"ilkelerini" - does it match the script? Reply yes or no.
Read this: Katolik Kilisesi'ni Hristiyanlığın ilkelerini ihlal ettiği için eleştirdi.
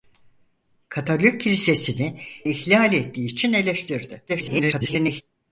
no